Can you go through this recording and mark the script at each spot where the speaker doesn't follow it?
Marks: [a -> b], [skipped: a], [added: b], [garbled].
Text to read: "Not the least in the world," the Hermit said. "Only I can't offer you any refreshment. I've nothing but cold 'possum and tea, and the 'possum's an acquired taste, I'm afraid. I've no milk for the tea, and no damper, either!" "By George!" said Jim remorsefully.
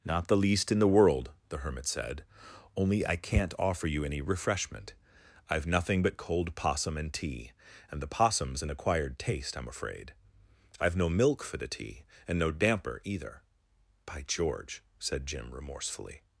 "Not the least in the world," the Hermit said. "Only I can't offer you any refreshment. I've nothing but cold 'possum and tea, and the 'possum's an acquired taste, I'm afraid. I've no milk for the tea, and no damper, either!" "By George!" said Jim remorsefully.